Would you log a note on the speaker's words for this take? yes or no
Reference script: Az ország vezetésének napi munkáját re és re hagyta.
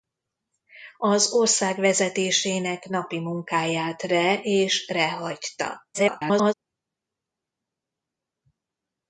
yes